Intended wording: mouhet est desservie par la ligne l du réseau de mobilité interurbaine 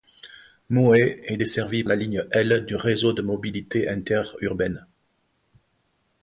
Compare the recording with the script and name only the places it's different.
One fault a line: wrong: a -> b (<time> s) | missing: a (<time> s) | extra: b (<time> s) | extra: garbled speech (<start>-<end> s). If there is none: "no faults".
missing: par (1.8 s)